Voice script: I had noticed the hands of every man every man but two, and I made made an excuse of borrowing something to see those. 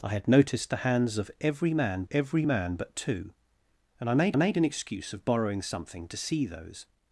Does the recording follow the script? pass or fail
pass